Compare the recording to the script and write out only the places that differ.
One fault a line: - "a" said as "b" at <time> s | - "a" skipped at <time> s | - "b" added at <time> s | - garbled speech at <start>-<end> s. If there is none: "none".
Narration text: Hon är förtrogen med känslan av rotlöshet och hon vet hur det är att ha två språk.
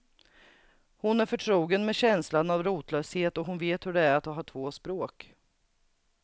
none